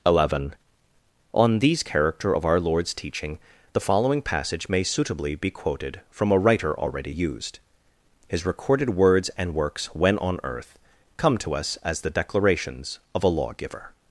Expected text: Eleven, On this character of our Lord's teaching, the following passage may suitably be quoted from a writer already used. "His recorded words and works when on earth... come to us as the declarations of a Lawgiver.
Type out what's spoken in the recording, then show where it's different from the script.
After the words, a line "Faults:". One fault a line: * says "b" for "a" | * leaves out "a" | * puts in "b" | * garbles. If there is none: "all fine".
Eleven, On these character of our Lord's teaching, the following passage may suitably be quoted from a writer already used. "His recorded words and works when on earth... come to us as the declarations of a Lawgiver.
Faults:
* says "these" for "this"